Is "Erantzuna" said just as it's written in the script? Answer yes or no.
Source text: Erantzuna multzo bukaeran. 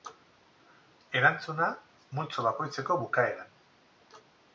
yes